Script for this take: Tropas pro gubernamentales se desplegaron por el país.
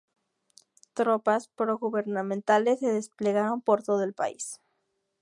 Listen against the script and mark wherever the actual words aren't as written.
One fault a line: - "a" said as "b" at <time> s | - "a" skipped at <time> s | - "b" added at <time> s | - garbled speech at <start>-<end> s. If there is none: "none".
- "todo" added at 3.8 s